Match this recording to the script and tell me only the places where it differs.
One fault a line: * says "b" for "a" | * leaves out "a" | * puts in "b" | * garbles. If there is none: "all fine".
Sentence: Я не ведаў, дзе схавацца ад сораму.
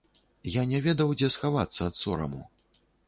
all fine